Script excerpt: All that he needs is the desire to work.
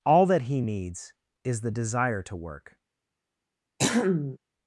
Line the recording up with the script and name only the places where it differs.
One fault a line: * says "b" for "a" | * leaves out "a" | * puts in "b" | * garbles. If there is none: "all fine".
all fine